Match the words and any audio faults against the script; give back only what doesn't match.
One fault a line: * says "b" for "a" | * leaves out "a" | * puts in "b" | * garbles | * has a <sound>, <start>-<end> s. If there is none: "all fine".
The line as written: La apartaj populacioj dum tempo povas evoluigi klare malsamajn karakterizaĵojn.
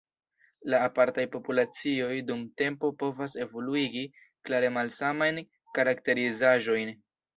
all fine